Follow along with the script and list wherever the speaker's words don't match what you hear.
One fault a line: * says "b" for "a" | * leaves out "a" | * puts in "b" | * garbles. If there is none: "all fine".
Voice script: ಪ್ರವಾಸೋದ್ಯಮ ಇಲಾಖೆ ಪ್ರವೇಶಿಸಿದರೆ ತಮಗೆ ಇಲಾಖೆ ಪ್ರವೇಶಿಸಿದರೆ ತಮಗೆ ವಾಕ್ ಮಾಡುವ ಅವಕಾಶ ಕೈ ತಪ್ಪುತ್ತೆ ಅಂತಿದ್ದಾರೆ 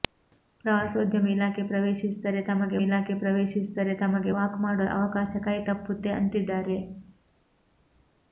all fine